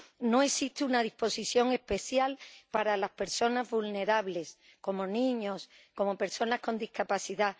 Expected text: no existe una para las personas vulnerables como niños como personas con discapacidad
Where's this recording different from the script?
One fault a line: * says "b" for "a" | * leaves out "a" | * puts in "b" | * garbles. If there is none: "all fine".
* puts in "disposición especial"